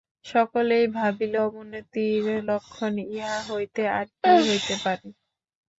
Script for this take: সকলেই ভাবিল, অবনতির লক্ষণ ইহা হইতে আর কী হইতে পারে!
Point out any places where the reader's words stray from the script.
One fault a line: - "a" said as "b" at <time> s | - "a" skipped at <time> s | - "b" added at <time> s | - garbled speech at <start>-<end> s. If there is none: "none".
none